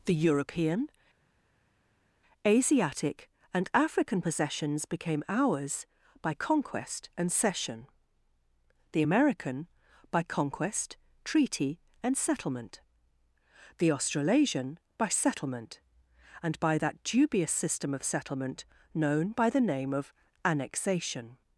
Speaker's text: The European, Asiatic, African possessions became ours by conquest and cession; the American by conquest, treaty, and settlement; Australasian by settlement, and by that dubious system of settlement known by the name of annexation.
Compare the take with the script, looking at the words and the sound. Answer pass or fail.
fail